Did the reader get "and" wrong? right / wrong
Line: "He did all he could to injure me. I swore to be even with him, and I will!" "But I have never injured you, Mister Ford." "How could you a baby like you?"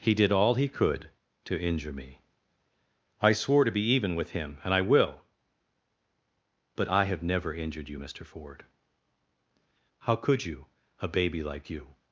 right